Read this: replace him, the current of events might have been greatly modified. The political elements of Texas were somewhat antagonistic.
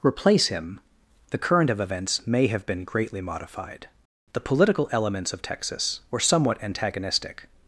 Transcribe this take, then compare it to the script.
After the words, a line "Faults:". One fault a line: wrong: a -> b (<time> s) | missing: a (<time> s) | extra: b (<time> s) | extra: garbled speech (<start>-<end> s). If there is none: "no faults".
replace him, the current of events may have been greatly modified. The political elements of Texas were somewhat antagonistic.
Faults:
wrong: might -> may (2.2 s)